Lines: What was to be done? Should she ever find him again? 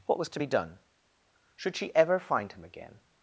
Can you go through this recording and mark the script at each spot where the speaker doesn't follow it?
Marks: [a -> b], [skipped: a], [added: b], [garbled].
What was to be done? Should she ever find him again?